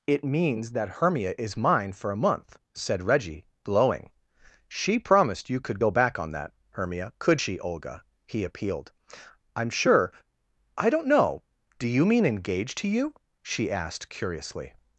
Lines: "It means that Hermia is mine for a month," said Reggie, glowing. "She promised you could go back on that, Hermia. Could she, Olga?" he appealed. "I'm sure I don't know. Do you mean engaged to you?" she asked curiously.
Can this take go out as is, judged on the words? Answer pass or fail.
pass